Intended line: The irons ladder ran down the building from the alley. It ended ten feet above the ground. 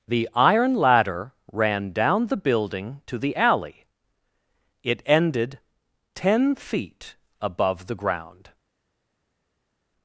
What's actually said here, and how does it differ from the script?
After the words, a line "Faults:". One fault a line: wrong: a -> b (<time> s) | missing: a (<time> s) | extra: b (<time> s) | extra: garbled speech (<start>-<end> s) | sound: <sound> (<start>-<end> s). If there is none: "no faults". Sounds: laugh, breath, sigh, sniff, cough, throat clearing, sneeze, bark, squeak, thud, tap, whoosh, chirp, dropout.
The iron ladder ran down the building to the alley. It ended ten feet above the ground.
Faults:
wrong: irons -> iron (0.3 s)
wrong: from -> to (3.0 s)